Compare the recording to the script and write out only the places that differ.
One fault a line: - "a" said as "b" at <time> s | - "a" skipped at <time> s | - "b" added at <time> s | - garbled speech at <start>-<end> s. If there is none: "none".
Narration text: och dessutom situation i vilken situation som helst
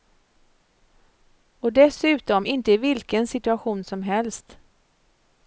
- "situation" said as "inte" at 2.5 s